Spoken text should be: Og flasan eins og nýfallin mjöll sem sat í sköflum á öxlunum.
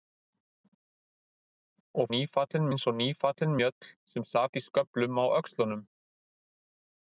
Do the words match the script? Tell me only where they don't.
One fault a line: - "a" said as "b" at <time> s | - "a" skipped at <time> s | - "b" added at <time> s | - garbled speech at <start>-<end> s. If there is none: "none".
- "flasan" said as "nýfallin" at 2.1 s